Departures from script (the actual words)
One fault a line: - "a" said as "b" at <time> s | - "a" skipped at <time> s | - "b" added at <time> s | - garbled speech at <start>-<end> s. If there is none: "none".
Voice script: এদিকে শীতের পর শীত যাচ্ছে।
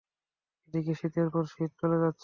- "চলে" added at 1.8 s